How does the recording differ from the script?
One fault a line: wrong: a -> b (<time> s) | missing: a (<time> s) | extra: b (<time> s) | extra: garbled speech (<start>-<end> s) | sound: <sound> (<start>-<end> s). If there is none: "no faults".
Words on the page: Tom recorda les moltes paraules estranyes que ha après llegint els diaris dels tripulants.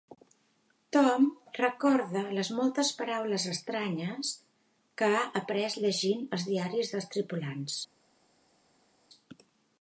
no faults